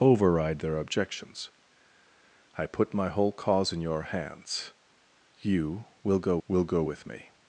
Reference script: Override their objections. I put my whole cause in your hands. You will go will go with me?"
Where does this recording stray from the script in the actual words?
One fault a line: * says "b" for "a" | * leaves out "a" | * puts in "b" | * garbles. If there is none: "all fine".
all fine